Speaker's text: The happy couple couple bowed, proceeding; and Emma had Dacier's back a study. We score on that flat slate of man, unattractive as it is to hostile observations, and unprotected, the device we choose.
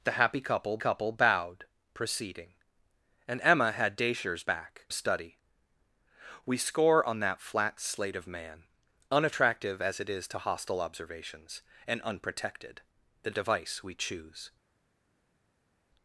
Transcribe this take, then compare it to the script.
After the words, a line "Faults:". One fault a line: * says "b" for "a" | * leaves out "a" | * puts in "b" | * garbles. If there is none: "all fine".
The happy couple couple bowed, proceeding; and Emma had Dacier's back a study. We score on that flat slate of man, unattractive as it is to hostile observations, and unprotected, the device we choose.
Faults:
all fine